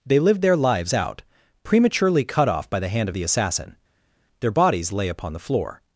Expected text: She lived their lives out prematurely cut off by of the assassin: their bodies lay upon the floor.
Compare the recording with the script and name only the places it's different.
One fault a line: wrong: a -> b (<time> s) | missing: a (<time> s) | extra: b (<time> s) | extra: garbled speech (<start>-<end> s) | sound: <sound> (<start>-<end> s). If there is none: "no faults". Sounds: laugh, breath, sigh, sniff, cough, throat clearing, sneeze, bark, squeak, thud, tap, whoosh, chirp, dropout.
wrong: She -> They (0.0 s)
extra: the hand (2.8 s)